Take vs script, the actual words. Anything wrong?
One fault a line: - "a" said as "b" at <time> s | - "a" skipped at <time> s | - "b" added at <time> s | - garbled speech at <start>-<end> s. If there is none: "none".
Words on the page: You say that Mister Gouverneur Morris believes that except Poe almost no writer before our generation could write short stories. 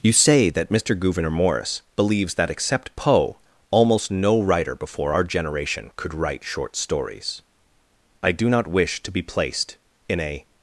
- "I do not wish to be placed in a" added at 8.2 s